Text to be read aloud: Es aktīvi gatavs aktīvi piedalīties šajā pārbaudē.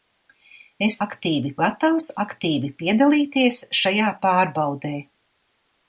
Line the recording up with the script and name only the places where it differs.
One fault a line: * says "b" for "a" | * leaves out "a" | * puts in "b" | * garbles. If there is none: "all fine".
all fine